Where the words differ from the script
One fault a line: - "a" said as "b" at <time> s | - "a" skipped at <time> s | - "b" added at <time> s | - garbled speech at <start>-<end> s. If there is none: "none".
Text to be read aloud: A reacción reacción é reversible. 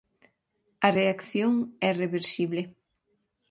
- "reacción" skipped at 1.5 s